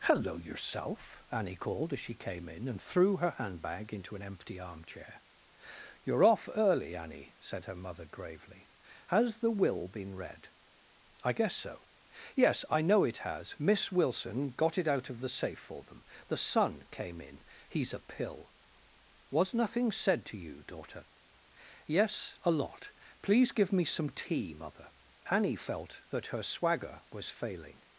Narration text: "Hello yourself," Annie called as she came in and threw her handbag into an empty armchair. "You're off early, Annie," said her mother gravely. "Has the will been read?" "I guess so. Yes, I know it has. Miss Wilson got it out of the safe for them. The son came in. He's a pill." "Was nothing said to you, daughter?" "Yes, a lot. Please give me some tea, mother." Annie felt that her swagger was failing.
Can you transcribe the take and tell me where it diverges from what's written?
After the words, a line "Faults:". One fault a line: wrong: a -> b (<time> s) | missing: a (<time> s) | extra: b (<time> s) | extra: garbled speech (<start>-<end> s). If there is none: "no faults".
"Hello yourself," Annie called as she came in and threw her handbag into an empty armchair. "You're off early, Annie," said her mother gravely. "Has the will been read?" "I guess so. Yes, I know it has. Miss Wilson got it out of the safe for them. The son came in. He's a pill." "Was nothing said to you, daughter?" "Yes, a lot. Please give me some tea, mother." Annie felt that her swagger was failing.
Faults:
no faults